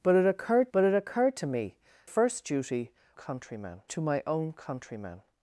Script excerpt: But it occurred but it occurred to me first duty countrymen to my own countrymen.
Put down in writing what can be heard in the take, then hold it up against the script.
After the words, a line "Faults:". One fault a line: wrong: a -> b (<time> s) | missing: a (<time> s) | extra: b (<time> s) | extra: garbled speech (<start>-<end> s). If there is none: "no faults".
But it occurred but it occurred to me first duty countrymen to my own countrymen.
Faults:
no faults